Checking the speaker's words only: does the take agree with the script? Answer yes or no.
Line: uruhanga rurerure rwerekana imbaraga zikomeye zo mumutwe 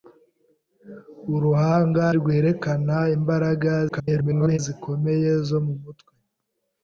no